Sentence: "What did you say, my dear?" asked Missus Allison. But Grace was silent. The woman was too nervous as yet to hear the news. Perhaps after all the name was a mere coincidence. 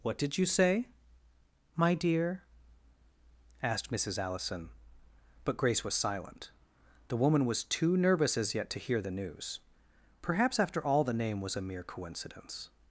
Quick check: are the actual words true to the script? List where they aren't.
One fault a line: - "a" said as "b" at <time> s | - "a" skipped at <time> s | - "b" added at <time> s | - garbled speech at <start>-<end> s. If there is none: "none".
none